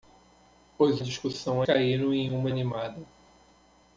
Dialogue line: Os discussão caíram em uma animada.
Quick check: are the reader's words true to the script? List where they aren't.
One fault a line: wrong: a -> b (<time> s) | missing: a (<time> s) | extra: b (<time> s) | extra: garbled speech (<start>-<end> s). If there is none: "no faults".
no faults